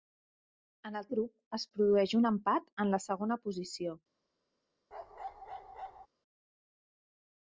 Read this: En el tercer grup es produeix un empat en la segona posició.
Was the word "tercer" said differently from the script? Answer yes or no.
yes